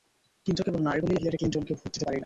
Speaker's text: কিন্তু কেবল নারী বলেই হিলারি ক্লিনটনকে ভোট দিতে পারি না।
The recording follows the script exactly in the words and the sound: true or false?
true